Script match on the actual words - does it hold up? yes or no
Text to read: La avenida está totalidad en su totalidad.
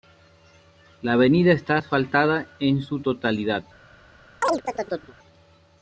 no